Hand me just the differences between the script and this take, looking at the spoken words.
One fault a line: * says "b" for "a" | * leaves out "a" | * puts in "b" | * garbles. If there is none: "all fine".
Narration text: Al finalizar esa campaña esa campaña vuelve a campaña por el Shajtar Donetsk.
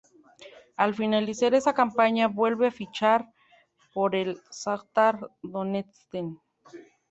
* leaves out "esa campaña"
* says "fichar" for "campaña"